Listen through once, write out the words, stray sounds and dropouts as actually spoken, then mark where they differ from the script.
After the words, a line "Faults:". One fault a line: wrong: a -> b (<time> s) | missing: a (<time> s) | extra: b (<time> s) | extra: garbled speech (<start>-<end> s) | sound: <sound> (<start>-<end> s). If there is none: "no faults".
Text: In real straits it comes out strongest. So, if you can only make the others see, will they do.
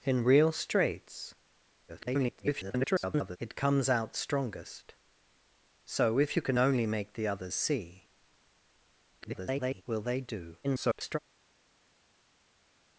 In real straits [garbled] it comes out strongest. So, if you can only make the others see, [garbled] will they do. [garbled]
Faults:
extra: garbled speech (1.9-3.4 s)
extra: garbled speech (9.2-9.8 s)
extra: garbled speech (10.6-11.2 s)